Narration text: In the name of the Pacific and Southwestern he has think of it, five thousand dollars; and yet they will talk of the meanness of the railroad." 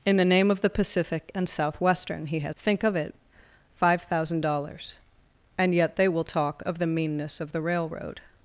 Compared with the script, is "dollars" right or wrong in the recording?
right